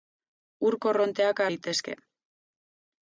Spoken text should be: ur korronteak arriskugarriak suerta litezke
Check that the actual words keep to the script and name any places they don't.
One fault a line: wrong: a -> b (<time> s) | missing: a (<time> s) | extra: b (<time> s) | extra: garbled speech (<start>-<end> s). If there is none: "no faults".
missing: arriskugarriak suerta (1.4 s)